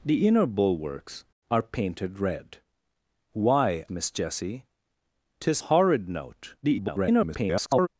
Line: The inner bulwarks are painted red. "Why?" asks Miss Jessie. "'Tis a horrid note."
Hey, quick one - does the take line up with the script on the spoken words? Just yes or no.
no